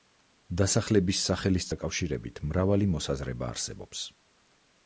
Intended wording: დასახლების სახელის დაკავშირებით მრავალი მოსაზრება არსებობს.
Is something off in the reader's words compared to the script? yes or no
no